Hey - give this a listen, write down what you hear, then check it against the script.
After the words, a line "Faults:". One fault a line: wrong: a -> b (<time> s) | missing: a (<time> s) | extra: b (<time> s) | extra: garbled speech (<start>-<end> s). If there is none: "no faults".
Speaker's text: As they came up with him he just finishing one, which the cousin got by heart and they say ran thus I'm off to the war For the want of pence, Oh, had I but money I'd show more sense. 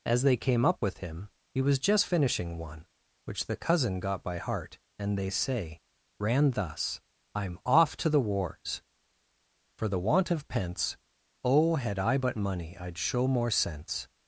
As they came up with him he was just finishing one, which the cousin got by heart and they say ran thus I'm off to the wars For the want of pence, Oh, had I but money I'd show more sense.
Faults:
extra: was (1.6 s)
wrong: war -> wars (8.2 s)